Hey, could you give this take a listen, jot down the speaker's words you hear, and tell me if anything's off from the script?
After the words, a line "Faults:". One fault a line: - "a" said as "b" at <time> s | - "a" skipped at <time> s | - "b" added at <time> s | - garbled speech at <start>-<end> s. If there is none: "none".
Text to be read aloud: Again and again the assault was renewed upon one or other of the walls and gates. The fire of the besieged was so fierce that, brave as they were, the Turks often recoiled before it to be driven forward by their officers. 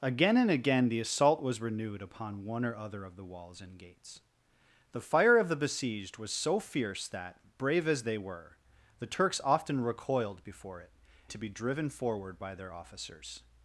Again and again the assault was renewed upon one or other of the walls and gates. The fire of the besieged was so fierce that, brave as they were, the Turks often recoiled before it to be driven forward by their officers.
Faults:
none